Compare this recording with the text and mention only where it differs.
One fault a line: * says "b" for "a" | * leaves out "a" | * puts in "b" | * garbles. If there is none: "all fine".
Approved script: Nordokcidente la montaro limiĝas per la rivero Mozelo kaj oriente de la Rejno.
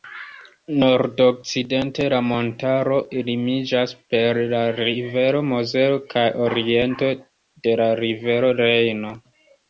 * puts in "rivero"